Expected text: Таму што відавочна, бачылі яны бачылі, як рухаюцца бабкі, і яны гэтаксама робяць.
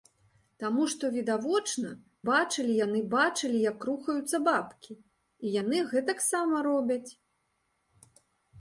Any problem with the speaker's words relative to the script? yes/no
no